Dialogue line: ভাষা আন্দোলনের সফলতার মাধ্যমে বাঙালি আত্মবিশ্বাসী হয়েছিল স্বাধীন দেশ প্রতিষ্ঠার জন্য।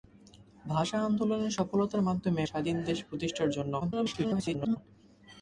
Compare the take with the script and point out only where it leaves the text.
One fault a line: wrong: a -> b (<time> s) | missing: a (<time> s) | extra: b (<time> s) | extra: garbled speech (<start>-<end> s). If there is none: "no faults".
missing: বাঙালি আত্মবিশ্বাসী হয়েছিল (2.4 s)
extra: garbled speech (3.8-4.8 s)